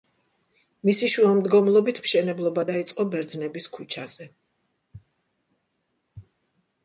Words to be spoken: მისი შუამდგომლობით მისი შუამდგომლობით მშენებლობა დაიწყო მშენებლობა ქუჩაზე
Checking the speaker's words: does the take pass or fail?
fail